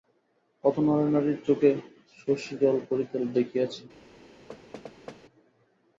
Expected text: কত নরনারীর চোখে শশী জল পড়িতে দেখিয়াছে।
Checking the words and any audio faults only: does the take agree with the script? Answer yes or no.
no